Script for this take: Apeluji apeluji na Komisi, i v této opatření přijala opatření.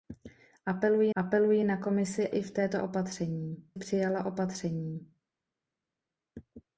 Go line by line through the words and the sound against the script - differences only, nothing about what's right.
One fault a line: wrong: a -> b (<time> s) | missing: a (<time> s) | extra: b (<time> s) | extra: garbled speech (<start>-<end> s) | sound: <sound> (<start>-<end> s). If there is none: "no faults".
no faults